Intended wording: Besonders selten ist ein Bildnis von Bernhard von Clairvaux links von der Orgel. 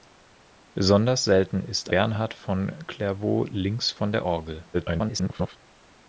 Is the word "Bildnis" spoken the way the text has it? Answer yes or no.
no